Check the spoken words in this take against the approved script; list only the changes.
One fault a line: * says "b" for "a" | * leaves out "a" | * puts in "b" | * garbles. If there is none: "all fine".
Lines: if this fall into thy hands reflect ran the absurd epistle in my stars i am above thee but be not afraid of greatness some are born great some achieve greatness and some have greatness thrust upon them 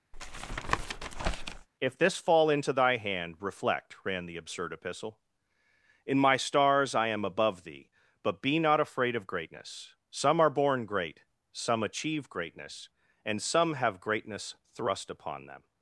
* says "hand" for "hands"